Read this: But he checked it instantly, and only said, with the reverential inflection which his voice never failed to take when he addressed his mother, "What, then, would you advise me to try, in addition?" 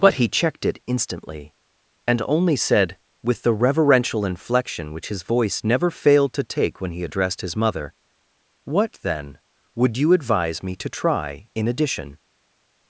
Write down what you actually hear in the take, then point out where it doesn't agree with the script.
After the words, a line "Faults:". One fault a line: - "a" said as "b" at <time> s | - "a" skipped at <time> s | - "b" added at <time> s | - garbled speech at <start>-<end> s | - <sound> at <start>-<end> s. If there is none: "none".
But he checked it instantly, and only said, with the reverential inflection which his voice never failed to take when he addressed his mother, "What, then, would you advise me to try, in addition?"
Faults:
none